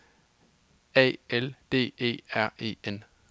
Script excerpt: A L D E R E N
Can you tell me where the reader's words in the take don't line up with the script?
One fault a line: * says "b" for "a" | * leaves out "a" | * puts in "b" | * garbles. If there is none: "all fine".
all fine